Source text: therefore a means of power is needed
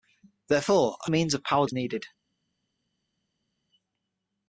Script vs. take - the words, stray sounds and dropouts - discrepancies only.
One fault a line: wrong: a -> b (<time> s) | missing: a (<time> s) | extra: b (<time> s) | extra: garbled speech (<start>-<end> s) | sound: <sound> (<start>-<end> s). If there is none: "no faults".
no faults